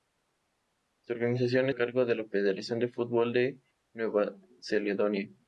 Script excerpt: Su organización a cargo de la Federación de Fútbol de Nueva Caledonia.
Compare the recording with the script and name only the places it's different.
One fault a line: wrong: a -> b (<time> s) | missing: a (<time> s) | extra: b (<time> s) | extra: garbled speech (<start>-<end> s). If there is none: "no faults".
no faults